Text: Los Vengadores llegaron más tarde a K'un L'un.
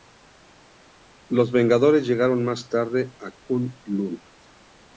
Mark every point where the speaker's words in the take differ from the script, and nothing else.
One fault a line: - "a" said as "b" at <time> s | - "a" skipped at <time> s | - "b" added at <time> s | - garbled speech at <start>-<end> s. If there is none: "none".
none